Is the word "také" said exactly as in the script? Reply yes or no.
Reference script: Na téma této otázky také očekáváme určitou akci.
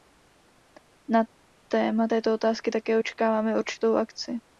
yes